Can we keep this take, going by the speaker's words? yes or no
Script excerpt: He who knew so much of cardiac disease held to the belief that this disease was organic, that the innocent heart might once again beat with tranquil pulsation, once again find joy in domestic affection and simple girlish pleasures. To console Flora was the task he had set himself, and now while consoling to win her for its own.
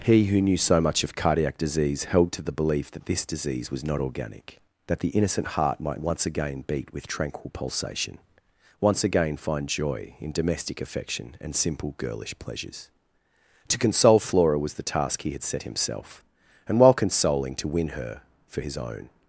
no